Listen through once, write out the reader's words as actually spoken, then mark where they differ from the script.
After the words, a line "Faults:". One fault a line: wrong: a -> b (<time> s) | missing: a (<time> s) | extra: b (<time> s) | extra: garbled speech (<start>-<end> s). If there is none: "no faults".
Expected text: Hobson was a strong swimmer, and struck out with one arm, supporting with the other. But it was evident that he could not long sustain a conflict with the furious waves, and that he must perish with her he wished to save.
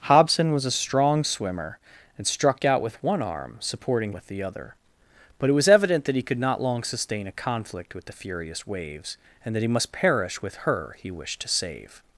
Hobson was a strong swimmer, and struck out with one arm, supporting with the other. But it was evident that he could not long sustain a conflict with the furious waves, and that he must perish with her he wished to save.
Faults:
no faults